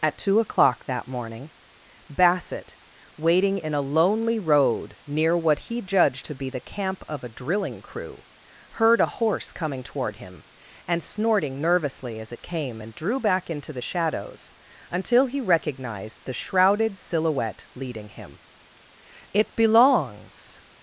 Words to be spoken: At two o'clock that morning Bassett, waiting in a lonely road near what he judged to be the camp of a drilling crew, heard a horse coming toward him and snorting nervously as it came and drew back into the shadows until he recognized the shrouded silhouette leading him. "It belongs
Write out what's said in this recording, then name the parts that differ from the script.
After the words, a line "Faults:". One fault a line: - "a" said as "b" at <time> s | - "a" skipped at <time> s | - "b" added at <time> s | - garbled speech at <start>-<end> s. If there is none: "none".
At two o'clock that morning Bassett, waiting in a lonely road near what he judged to be the camp of a drilling crew, heard a horse coming toward him and snorting nervously as it came and drew back into the shadows until he recognized the shrouded silhouette leading him. "It belongs
Faults:
none